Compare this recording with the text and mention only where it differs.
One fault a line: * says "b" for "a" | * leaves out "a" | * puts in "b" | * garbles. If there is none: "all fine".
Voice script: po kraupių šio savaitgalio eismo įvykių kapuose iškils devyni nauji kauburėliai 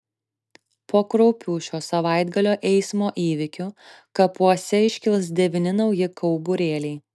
all fine